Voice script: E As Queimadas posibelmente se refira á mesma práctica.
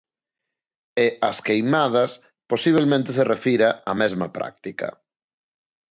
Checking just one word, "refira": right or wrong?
right